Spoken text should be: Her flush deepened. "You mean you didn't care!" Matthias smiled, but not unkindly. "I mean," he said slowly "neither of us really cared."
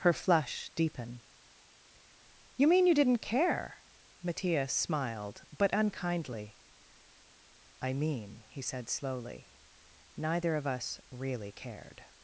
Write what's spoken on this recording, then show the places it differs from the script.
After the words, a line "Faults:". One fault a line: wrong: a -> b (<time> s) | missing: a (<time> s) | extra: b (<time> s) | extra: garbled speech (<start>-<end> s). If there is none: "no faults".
Her flush deepen. "You mean you didn't care!" Matthias smiled, but unkindly. "I mean," he said slowly "neither of us really cared."
Faults:
wrong: deepened -> deepen (0.7 s)
missing: not (5.7 s)